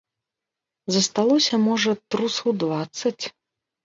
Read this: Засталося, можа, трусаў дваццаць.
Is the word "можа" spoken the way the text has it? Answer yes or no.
yes